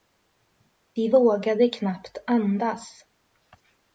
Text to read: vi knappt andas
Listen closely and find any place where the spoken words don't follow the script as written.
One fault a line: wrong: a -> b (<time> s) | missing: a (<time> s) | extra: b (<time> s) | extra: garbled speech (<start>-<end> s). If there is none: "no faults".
extra: vågade (1.1 s)